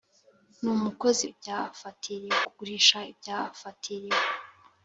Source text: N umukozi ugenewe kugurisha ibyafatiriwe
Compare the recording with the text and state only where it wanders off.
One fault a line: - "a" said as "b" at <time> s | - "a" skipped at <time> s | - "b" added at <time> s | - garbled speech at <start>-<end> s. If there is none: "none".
- "ugenewe" said as "ibyafatiriwe" at 1.3 s